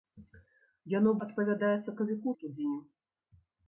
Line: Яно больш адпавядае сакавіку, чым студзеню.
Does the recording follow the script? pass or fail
fail